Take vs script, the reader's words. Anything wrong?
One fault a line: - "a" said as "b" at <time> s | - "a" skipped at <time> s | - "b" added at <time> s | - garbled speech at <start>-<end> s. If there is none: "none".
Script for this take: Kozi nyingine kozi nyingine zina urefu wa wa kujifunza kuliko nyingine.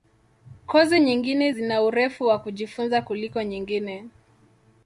- "kozi nyingine" skipped at 1.5 s
- "wa" skipped at 2.4 s